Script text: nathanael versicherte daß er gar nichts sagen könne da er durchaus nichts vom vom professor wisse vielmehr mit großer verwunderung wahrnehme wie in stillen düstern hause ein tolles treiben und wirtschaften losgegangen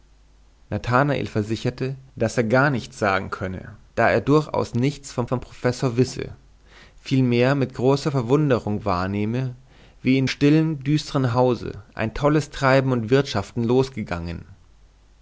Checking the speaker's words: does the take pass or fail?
pass